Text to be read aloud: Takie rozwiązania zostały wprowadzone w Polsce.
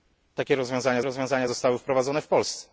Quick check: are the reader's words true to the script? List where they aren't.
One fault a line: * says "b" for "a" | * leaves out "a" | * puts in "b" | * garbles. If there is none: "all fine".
* puts in "rozwiązania"